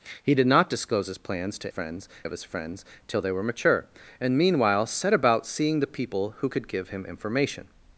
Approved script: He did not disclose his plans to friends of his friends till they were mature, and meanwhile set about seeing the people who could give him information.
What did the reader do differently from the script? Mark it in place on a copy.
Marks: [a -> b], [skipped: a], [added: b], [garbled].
He did not disclose his plans to friends of his friends till they were mature, and meanwhile set about seeing the people who could give him information.